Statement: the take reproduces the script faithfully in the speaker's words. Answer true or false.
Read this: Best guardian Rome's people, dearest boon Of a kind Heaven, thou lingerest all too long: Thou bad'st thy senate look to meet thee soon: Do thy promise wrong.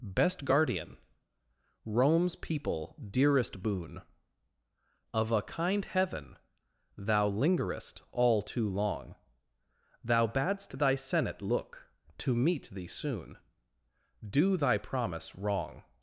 true